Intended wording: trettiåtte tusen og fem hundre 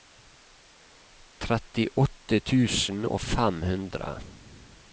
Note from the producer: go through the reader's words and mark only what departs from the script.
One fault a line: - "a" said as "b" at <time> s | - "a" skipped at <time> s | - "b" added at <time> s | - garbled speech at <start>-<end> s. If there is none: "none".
none